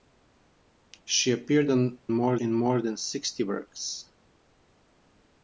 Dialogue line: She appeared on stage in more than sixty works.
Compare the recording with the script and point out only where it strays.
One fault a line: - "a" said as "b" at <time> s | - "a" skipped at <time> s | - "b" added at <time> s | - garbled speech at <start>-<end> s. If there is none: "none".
- "stage" said as "more" at 2.1 s